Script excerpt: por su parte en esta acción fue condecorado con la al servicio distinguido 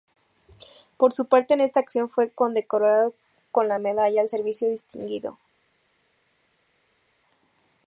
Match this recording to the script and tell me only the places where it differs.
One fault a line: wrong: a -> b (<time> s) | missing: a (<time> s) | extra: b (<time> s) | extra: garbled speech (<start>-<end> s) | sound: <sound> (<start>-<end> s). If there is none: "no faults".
extra: medalla (3.8 s)